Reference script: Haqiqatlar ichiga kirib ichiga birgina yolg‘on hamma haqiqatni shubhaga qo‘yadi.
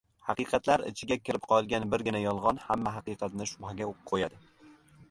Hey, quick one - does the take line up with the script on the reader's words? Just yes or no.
no